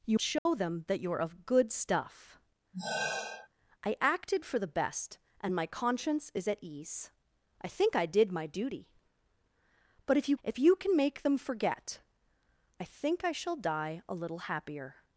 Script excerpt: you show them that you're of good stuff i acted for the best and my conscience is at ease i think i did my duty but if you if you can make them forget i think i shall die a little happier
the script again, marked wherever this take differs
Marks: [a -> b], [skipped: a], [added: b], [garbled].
you show them that you're of good stuff i acted for the best and my conscience is at ease i think i did my duty but if you if you can make them forget i think i shall die a little happier